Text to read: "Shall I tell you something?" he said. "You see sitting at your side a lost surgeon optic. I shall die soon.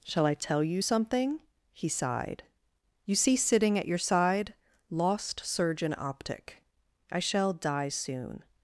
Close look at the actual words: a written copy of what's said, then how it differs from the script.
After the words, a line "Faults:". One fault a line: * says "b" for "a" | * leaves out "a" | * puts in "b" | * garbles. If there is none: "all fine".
"Shall I tell you something?" he sighed. "You see sitting at your side lost surgeon optic. I shall die soon.
Faults:
* says "sighed" for "said"
* leaves out "a"